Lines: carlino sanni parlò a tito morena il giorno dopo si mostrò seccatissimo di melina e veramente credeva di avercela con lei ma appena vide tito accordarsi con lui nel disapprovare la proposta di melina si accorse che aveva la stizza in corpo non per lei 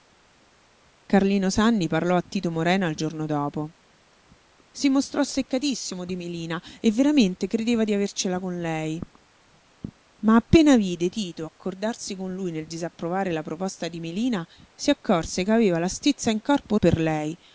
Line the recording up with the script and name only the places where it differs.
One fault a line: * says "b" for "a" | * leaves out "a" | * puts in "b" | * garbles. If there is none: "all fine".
* leaves out "non"